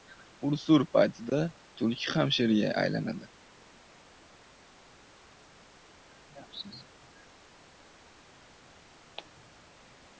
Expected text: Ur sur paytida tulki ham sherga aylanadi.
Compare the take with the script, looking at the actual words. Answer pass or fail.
pass